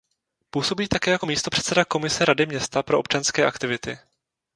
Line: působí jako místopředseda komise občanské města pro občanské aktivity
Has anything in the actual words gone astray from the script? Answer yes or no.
yes